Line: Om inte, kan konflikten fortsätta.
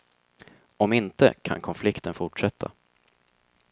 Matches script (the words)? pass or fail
pass